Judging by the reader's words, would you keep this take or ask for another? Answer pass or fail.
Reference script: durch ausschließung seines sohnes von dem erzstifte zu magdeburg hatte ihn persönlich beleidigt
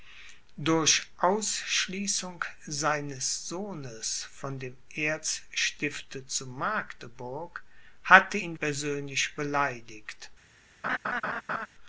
pass